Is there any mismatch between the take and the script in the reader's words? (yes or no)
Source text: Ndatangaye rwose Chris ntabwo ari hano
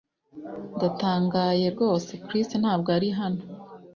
no